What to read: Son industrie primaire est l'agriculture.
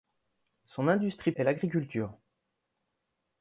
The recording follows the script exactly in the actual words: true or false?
false